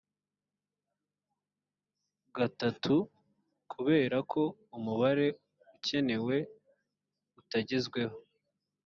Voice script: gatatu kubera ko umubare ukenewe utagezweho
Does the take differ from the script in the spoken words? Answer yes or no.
no